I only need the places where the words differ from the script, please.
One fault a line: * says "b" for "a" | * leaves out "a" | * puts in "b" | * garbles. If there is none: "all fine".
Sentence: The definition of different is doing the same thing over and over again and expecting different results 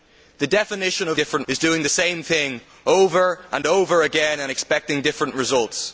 all fine